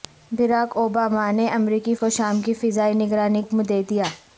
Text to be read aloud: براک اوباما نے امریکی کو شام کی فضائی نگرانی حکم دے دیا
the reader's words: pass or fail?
pass